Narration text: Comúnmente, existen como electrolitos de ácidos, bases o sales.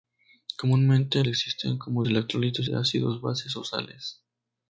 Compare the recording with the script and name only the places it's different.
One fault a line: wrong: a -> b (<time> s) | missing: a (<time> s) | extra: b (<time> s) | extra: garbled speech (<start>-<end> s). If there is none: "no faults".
no faults